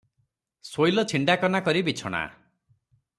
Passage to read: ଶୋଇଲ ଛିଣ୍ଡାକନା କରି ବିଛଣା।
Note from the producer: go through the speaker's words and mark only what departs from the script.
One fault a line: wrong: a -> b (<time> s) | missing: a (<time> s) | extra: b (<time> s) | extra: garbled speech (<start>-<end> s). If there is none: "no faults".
no faults